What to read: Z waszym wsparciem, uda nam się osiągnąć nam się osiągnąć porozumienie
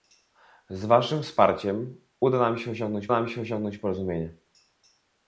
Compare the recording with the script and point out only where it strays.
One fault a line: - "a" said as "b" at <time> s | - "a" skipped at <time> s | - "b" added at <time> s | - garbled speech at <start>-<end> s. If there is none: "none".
none